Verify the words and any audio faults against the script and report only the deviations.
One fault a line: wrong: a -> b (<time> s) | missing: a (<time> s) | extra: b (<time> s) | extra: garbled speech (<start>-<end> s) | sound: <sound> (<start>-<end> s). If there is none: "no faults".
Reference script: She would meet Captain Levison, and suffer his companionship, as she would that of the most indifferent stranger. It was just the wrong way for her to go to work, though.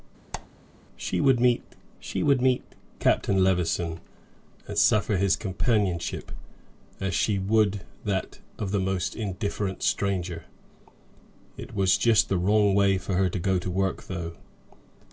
sound: squeak (0.3-0.5 s)
extra: she would meet (2.0 s)